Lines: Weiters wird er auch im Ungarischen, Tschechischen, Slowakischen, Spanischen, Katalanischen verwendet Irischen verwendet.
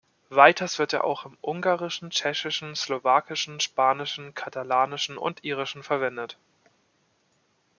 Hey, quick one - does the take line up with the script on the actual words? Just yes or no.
no